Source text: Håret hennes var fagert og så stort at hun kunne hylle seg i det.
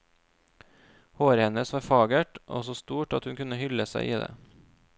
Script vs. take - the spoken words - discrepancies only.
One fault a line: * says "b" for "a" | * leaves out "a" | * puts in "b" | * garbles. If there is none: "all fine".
all fine